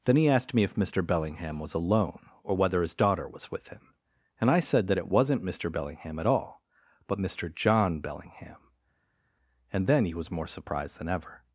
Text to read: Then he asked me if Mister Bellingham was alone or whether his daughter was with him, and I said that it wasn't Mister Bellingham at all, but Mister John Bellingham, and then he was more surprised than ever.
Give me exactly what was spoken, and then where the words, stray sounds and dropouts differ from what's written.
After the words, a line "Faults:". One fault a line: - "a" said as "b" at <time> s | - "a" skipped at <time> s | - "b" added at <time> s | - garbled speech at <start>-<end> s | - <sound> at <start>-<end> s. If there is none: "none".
Then he asked me if Mister Bellingham was alone or whether his daughter was with him, and I said that it wasn't Mister Bellingham at all, but Mister John Bellingham, and then he was more surprised than ever.
Faults:
none